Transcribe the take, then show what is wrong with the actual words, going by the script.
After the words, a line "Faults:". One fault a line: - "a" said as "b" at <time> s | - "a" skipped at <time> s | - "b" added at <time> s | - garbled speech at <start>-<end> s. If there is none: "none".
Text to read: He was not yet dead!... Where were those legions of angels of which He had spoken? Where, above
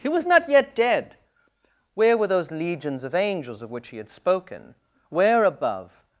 He was not yet dead!... Where were those legions of angels of which He had spoken? Where, above
Faults:
none